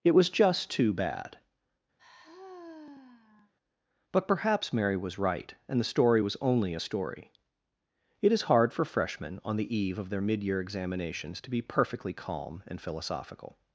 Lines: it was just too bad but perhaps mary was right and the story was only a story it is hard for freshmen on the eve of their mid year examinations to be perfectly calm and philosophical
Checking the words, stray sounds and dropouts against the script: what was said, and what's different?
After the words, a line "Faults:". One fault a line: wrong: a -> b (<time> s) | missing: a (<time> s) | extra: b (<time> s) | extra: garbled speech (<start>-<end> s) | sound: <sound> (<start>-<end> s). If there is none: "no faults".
it was just too bad but perhaps mary was right and the story was only a story it is hard for freshmen on the eve of their mid year examinations to be perfectly calm and philosophical
Faults:
sound: sigh (2.0-3.5 s)